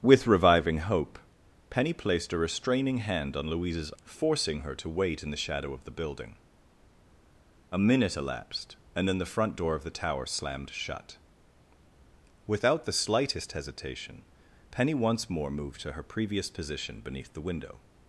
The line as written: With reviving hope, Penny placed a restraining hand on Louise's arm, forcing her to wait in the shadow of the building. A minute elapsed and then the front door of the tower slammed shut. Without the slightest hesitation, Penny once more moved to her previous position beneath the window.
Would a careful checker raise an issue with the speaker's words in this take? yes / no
yes